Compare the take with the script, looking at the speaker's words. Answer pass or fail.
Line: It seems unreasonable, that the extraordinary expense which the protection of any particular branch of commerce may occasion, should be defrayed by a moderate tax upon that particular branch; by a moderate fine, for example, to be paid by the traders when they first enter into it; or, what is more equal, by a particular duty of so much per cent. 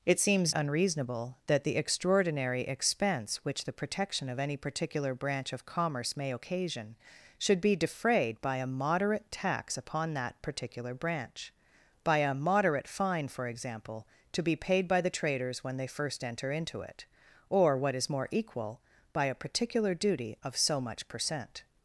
pass